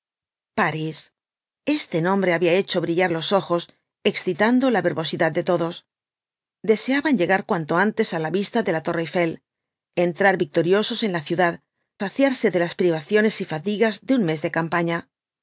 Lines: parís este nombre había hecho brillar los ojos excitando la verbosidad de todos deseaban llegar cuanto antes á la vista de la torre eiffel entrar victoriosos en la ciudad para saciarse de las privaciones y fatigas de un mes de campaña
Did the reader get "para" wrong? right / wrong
wrong